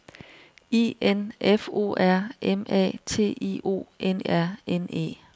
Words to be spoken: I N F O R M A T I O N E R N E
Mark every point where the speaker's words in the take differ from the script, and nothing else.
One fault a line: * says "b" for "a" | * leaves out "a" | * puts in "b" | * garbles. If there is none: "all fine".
* leaves out "E"